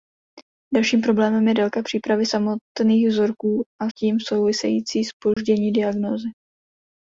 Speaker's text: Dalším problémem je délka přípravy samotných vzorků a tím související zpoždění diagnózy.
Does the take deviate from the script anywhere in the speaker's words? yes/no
no